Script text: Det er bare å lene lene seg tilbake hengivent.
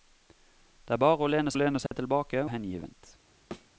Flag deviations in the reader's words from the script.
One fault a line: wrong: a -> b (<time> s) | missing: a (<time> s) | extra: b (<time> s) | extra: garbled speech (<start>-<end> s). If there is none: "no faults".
no faults